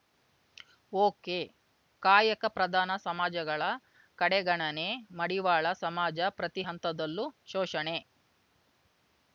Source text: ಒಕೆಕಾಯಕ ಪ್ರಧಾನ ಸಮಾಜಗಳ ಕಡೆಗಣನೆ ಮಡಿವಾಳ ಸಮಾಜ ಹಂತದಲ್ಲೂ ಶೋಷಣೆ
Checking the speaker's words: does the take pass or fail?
fail